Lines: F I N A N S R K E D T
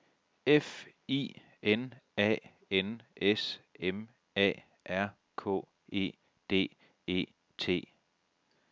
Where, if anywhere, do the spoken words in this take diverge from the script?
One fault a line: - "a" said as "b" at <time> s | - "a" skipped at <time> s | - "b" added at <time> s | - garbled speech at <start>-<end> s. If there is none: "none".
- "M A" added at 3.8 s
- "E" added at 7.1 s